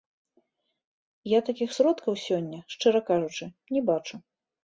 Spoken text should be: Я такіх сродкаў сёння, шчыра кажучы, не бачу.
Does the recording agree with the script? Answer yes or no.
yes